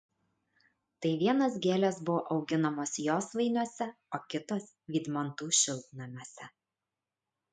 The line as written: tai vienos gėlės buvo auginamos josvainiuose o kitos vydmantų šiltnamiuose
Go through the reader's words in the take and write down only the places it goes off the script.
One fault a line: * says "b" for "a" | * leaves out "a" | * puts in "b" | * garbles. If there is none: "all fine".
all fine